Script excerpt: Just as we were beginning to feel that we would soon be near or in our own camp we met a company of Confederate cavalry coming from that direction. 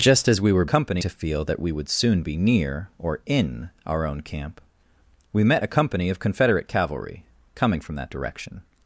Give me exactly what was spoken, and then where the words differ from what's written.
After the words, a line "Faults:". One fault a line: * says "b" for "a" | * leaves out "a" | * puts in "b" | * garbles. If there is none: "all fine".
Just as we were company to feel that we would soon be near or in our own camp we met a company of Confederate cavalry coming from that direction.
Faults:
* says "company" for "beginning"